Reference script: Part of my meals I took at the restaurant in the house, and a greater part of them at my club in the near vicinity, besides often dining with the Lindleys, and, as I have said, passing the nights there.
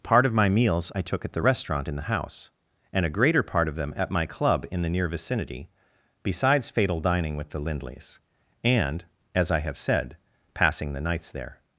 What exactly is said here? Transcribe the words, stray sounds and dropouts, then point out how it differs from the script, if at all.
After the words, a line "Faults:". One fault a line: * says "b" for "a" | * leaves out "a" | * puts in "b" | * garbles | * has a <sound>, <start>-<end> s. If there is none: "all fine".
Part of my meals I took at the restaurant in the house, and a greater part of them at my club in the near vicinity, besides fatal dining with the Lindleys, and, as I have said, passing the nights there.
Faults:
* says "fatal" for "often"